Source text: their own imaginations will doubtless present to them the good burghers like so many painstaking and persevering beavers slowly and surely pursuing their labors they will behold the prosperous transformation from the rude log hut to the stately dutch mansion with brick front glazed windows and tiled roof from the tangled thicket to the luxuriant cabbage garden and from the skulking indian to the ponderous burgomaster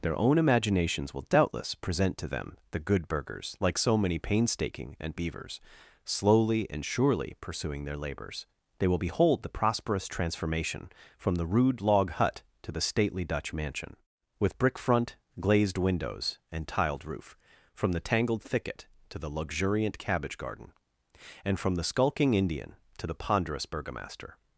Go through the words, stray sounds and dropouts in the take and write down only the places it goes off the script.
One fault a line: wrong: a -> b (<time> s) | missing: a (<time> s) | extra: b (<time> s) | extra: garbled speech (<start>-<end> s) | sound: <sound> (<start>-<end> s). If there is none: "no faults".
missing: persevering (5.2 s)